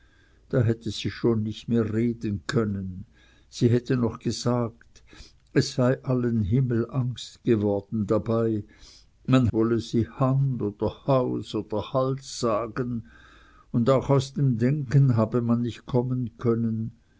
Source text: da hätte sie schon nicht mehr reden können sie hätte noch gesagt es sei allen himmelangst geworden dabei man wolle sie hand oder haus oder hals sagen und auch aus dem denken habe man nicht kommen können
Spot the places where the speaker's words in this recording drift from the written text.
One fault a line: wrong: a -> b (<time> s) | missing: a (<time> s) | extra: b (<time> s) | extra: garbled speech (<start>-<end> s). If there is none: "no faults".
no faults